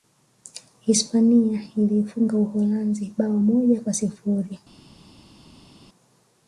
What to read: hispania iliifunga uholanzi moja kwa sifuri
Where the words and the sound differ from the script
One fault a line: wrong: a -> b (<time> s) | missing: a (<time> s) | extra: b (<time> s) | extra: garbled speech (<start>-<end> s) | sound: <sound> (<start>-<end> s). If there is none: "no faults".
extra: bao (3.2 s)